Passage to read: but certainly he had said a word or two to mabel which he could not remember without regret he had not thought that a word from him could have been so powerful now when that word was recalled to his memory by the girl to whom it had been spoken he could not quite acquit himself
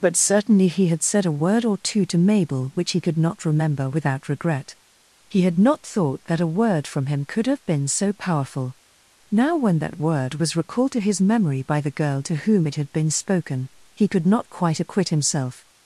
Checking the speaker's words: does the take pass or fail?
pass